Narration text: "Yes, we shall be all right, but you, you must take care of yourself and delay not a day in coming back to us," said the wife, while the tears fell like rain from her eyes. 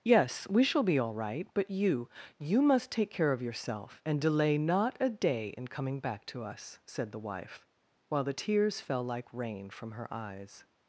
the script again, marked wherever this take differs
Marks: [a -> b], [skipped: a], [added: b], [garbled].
"Yes, we shall be all right, but you, you must take care of yourself and delay not a day in coming back to us," said the wife, while the tears fell like rain from her eyes.